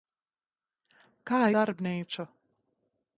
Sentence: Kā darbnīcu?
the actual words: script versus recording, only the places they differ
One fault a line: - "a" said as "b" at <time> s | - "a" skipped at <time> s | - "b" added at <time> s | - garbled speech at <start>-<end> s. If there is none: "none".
none